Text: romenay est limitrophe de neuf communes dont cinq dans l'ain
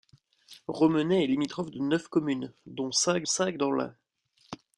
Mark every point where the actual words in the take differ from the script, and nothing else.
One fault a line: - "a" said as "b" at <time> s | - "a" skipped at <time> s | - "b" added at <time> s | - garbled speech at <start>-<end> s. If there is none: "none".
- "cinq" added at 3.2 s